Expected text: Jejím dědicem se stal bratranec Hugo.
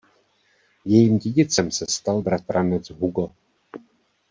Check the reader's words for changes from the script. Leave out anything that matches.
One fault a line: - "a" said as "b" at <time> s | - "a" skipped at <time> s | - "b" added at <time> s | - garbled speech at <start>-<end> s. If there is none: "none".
none